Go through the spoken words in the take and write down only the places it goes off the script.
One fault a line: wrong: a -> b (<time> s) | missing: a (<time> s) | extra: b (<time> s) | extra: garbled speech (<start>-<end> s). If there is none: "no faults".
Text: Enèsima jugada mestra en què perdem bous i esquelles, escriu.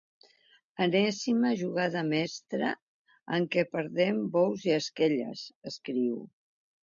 no faults